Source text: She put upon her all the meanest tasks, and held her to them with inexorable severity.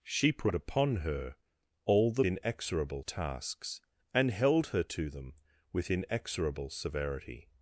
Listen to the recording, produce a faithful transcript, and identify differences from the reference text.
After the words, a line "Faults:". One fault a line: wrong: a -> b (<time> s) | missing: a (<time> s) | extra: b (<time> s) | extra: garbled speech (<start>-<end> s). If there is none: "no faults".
She put upon her all the inexorable tasks, and held her to them with inexorable severity.
Faults:
wrong: meanest -> inexorable (2.2 s)